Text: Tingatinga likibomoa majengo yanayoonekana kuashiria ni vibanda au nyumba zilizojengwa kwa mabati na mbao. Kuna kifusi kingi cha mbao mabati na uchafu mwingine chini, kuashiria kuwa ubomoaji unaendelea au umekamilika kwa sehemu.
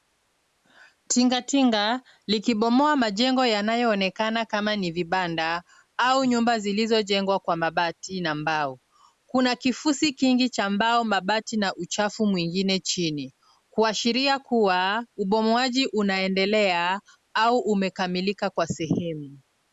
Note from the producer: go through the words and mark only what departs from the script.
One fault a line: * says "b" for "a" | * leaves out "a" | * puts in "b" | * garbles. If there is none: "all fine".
* says "kama" for "kuashiria"